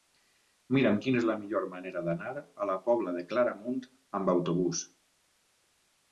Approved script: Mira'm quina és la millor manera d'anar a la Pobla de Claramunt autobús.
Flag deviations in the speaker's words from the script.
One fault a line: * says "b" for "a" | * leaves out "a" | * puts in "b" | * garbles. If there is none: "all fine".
* puts in "amb"